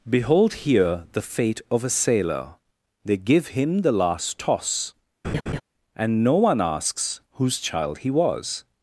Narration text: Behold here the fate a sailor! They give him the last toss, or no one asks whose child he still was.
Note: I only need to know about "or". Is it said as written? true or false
false